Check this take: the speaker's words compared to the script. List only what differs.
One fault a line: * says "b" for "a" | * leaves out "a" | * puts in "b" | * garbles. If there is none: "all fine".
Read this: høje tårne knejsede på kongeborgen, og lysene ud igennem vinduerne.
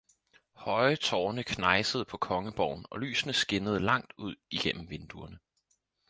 * puts in "skinnede langt"